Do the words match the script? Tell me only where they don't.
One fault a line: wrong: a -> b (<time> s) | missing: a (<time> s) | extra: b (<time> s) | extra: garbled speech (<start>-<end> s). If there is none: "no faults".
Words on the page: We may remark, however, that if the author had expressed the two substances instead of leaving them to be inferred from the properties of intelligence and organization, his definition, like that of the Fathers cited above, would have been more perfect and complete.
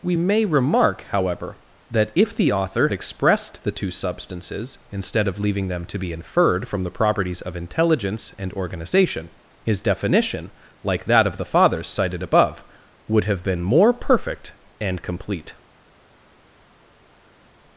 missing: had (2.9 s)